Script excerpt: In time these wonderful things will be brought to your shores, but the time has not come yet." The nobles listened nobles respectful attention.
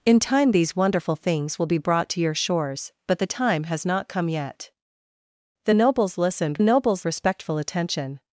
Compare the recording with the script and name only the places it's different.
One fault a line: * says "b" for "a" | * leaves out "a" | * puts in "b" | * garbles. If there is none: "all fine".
all fine